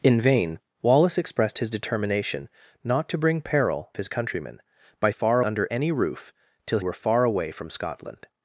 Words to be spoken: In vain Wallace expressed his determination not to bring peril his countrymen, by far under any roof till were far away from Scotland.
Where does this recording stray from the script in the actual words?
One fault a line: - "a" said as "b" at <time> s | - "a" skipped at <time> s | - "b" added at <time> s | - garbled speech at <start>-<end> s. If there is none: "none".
none